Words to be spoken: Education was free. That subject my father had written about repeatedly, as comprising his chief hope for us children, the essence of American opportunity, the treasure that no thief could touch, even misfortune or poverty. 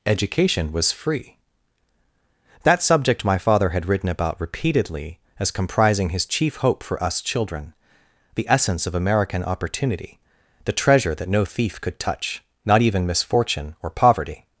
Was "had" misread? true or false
false